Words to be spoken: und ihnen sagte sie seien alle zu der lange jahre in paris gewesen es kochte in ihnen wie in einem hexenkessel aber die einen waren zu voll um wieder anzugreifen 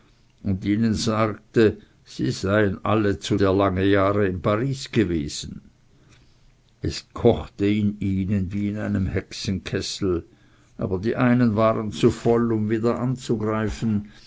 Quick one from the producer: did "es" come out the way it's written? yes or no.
yes